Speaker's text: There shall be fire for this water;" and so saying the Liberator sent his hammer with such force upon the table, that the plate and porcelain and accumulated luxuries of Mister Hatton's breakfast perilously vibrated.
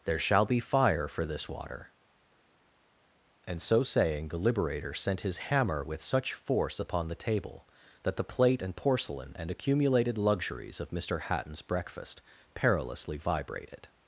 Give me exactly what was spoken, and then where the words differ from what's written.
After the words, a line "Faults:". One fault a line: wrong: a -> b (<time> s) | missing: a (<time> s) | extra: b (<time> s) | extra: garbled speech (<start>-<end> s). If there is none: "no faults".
There shall be fire for this water;" and so saying the Liberator sent his hammer with such force upon the table, that the plate and porcelain and accumulated luxuries of Mister Hatton's breakfast perilously vibrated.
Faults:
no faults